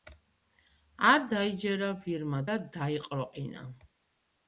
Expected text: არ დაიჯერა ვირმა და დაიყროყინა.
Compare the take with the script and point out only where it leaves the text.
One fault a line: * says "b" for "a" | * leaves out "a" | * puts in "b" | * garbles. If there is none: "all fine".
all fine